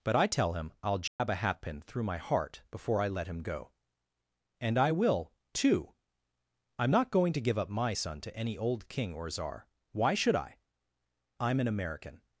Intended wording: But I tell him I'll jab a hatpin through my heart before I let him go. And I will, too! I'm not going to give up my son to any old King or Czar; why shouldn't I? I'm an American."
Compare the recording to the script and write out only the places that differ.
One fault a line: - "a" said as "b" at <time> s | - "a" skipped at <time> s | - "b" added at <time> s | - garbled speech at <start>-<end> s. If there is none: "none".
- "shouldn't" said as "should" at 10.1 s